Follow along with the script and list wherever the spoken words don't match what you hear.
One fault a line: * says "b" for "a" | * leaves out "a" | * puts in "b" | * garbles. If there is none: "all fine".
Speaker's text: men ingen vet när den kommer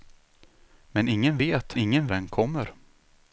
* says "ingen" for "när"